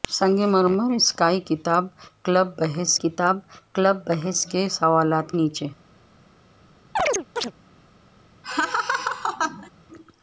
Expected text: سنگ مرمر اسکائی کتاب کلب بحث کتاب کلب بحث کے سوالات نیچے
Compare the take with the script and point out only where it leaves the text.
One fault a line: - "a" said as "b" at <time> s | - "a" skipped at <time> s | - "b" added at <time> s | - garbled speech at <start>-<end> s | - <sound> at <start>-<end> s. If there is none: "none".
- chirp at 7.0-7.5 s
- laugh at 8.4-9.7 s